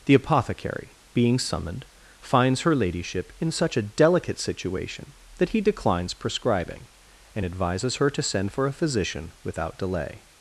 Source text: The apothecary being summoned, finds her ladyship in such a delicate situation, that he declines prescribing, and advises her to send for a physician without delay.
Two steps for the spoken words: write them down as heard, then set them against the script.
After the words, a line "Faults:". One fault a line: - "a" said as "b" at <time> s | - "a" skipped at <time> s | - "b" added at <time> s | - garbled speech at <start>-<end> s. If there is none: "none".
The apothecary being summoned, finds her ladyship in such a delicate situation, that he declines prescribing, and advises her to send for a physician without delay.
Faults:
none